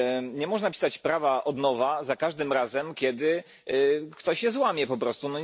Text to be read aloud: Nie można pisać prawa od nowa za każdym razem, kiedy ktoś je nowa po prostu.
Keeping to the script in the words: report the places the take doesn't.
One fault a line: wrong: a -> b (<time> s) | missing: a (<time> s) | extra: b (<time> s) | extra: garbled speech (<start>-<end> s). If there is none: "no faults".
wrong: nowa -> złamie (4.5 s)